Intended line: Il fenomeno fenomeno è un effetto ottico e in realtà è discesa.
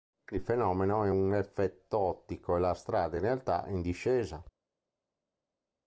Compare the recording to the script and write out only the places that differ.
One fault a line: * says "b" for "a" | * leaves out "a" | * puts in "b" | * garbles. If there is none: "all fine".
* leaves out "fenomeno"
* puts in "la strada"
* puts in "in"